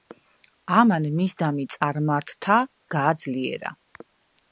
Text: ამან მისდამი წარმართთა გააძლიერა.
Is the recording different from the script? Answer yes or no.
no